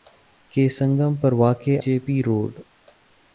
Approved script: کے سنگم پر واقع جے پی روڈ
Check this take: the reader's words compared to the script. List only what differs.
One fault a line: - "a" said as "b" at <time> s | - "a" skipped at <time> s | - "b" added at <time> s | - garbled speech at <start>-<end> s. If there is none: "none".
none